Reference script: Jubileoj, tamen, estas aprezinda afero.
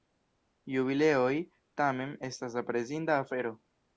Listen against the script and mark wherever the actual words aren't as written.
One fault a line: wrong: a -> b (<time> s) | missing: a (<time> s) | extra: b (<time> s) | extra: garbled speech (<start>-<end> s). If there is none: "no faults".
no faults